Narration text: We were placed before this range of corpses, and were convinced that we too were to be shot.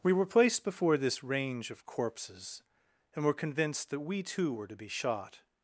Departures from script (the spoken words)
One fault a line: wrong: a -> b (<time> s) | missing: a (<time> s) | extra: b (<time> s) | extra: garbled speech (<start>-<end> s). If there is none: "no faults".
no faults